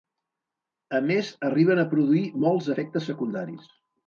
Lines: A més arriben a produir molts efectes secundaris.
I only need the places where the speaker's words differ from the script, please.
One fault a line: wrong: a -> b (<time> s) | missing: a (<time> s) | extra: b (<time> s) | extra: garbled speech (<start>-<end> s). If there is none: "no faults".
no faults